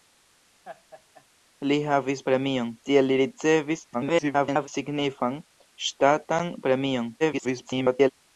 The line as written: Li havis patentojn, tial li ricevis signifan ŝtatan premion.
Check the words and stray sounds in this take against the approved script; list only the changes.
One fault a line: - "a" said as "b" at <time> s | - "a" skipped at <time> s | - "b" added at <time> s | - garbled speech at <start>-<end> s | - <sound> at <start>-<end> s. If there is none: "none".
- laugh at 0.6-1.2 s
- "patentojn" said as "premion" at 2.3 s
- garbled speech at 3.9-4.7 s
- garbled speech at 7.2-8.1 s